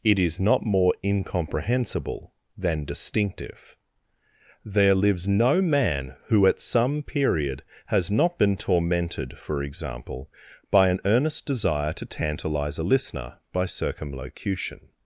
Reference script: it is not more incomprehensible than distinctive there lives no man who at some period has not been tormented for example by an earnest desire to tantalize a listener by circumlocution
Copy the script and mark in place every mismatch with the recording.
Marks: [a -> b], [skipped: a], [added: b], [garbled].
it is not more incomprehensible than distinctive there lives no man who at some period has not been tormented for example by an earnest desire to tantalize a listener by circumlocution